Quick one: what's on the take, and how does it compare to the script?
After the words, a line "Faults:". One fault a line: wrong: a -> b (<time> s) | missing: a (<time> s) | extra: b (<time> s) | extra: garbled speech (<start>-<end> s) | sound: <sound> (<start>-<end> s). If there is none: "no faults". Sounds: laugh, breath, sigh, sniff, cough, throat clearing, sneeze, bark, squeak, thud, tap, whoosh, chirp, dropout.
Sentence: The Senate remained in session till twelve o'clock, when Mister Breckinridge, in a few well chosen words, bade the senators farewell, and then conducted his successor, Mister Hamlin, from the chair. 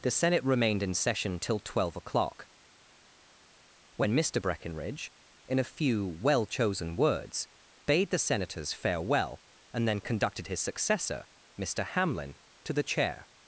The Senate remained in session till twelve o'clock, when Mister Breckinridge, in a few well chosen words, bade the senators farewell, and then conducted his successor, Mister Hamlin, to the chair.
Faults:
wrong: from -> to (12.6 s)